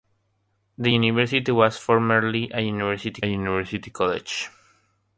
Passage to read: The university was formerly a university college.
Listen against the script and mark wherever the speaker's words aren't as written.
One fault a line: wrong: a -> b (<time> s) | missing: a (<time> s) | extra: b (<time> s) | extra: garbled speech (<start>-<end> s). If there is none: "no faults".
extra: university (3.2 s)